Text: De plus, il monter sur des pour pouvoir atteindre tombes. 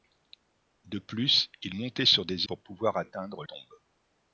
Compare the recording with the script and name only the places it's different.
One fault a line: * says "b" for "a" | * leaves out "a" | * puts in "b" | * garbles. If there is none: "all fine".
all fine